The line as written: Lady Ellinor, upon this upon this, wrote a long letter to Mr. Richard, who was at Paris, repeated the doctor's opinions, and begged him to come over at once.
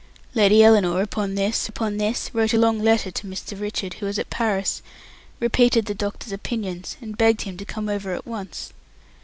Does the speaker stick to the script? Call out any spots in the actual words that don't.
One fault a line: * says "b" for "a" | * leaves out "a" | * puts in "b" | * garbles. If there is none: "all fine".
all fine